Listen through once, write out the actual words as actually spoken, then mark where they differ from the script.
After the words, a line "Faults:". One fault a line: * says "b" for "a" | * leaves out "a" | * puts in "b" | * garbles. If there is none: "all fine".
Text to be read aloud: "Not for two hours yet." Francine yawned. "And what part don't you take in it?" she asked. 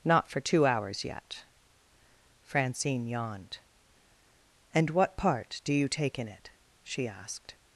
"Not for two hours yet." Francine yawned. "And what part do you take in it?" she asked.
Faults:
* says "do" for "don't"